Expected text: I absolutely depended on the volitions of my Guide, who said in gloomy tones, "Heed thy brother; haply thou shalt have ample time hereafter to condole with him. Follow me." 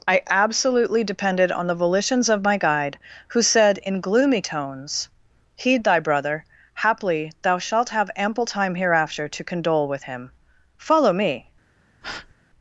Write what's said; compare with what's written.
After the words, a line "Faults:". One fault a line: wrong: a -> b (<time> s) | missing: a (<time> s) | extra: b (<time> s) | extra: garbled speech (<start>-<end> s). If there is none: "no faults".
I absolutely depended on the volitions of my Guide, who said in gloomy tones, "Heed thy brother; haply thou shalt have ample time hereafter to condole with him. Follow me."
Faults:
no faults